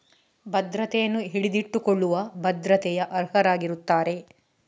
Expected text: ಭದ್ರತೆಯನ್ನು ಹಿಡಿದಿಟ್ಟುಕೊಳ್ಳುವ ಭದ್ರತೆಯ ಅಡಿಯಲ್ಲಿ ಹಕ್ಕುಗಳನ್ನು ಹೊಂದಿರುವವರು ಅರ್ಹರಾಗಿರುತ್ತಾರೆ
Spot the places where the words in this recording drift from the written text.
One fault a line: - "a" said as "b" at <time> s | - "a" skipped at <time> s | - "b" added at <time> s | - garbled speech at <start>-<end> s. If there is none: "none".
- "ಅಡಿಯಲ್ಲಿ ಹಕ್ಕುಗಳನ್ನು ಹೊಂದಿರುವವರು" skipped at 3.1 s